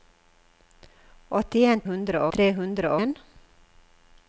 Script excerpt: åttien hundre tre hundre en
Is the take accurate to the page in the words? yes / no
yes